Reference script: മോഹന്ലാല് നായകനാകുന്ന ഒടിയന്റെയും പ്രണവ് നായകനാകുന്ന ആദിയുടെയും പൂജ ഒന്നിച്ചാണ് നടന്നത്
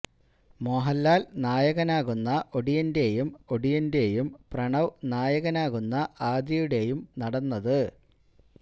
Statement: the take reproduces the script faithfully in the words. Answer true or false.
false